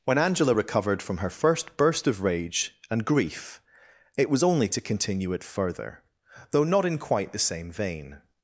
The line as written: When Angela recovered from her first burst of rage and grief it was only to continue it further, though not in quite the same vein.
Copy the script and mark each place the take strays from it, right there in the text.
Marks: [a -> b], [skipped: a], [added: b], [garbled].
When Angela recovered from her first burst of rage and grief it was only to continue it further, though not in quite the same vein.